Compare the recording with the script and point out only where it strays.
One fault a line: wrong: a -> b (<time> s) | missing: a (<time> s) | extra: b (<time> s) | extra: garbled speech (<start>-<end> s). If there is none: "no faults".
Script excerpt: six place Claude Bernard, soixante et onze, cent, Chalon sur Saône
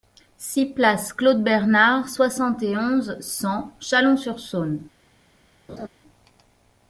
no faults